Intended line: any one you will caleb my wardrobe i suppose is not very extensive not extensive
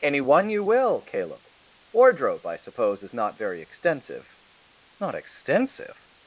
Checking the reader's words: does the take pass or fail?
fail